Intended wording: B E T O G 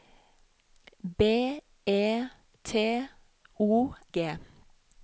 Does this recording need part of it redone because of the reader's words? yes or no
no